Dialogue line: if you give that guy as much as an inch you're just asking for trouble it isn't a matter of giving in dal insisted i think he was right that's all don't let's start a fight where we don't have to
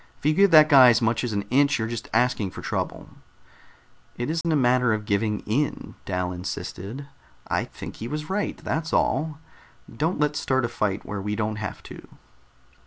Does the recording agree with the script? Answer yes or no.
yes